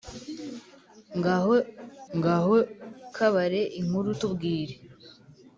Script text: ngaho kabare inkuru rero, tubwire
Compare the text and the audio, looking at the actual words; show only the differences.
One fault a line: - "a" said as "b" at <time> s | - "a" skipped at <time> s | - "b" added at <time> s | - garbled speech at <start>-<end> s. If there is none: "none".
- "ngaho" added at 2.2 s
- "rero" skipped at 4.1 s